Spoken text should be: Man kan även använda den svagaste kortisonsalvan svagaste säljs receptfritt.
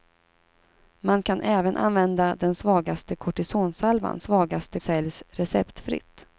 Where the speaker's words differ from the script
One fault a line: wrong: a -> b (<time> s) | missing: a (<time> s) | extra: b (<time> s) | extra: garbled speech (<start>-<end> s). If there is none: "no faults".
no faults